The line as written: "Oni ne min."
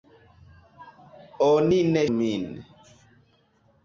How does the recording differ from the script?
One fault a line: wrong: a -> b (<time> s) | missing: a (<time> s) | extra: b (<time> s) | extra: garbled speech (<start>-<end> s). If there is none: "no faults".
no faults